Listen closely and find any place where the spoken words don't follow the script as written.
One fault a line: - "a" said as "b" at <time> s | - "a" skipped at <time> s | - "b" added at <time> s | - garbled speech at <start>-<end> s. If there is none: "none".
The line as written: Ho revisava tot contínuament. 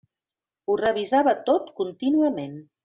none